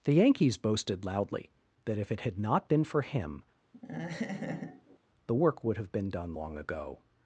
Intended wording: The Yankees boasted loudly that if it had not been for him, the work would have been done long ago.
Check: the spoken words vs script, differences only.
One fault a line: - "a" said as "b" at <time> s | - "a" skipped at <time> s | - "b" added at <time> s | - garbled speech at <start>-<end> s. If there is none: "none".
none